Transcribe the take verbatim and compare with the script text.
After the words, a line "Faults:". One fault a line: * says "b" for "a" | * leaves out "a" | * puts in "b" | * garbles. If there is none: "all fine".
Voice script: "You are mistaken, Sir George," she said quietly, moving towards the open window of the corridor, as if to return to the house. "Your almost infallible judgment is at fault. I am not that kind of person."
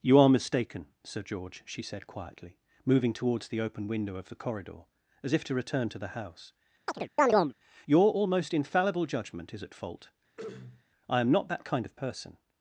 "You are mistaken, Sir George," she said quietly, moving towards the open window of the corridor, as if to return to the house. "Your almost infallible judgment is at fault. I am not that kind of person."
Faults:
all fine